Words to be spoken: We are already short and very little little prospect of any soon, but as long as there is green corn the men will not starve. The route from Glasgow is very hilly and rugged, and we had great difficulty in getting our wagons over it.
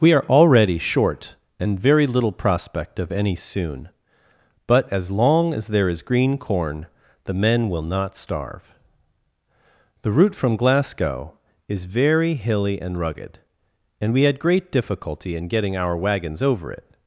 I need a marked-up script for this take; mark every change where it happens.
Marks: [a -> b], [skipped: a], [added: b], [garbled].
We are already short and very little [skipped: little] prospect of any soon, but as long as there is green corn the men will not starve. The route from Glasgow is very hilly and rugged, and we had great difficulty in getting our wagons over it.